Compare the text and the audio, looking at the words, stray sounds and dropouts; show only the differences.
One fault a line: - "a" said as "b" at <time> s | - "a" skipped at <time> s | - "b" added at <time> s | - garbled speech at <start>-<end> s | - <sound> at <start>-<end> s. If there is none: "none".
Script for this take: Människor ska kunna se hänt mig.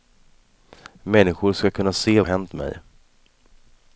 none